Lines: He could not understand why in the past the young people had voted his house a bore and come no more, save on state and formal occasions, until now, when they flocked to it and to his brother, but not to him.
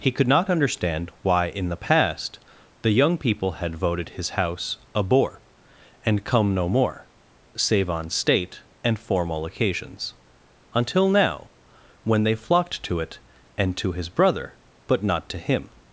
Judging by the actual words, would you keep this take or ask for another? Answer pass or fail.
pass